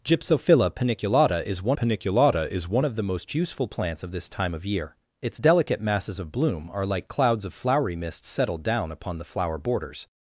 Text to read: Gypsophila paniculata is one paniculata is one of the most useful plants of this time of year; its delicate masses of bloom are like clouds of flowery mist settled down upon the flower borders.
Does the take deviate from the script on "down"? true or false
false